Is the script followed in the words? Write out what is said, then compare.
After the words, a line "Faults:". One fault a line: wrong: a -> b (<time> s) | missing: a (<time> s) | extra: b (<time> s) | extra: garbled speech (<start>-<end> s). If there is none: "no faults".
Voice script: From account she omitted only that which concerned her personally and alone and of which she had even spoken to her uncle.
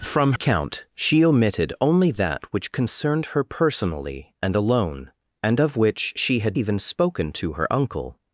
From account she omitted only that which concerned her personally and alone and of which she had even spoken to her uncle.
Faults:
no faults